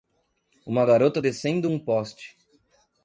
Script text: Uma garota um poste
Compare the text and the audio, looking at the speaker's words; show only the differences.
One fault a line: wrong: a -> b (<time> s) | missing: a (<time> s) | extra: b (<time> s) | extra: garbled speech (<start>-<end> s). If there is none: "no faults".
extra: descendo (1.2 s)